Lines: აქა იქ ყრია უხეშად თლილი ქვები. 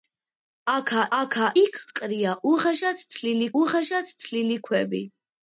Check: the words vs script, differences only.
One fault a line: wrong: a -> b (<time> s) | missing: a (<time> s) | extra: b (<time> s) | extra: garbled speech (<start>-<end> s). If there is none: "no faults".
extra: აქა (1.2 s)
extra: უხეშად თლილი (3.6 s)